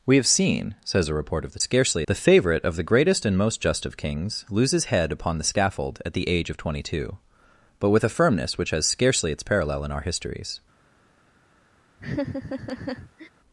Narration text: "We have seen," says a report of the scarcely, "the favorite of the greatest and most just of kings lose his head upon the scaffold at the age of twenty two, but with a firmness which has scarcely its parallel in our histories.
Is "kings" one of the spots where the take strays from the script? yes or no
no